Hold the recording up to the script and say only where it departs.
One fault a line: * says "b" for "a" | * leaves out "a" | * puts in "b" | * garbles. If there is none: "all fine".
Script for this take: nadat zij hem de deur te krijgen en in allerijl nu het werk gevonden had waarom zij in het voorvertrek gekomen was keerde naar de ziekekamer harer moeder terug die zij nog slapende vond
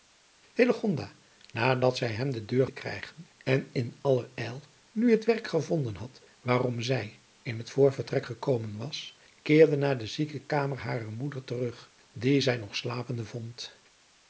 all fine